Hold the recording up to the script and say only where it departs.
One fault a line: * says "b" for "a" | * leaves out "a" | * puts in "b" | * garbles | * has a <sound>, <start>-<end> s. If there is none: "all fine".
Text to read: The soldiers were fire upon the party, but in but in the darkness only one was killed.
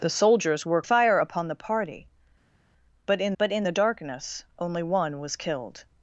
all fine